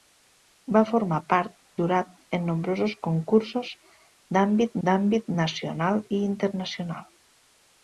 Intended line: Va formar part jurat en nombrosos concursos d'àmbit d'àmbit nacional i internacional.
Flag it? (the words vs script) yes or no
no